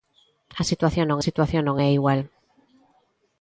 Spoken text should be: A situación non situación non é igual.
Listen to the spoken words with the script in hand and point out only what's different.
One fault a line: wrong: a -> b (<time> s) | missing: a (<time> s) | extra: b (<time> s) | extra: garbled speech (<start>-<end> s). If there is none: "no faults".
no faults